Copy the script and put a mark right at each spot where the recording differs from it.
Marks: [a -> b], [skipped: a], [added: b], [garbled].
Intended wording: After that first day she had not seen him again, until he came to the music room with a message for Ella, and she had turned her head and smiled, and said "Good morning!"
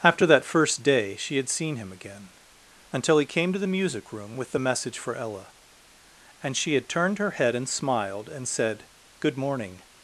After that first day she had [skipped: not] seen him again, until he came to the music room with [a -> the] message for Ella, and she had turned her head and smiled, and said "Good morning!"